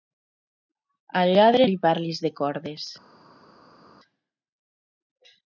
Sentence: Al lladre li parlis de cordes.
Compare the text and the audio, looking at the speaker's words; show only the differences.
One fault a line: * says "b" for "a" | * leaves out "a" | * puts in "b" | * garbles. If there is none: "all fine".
all fine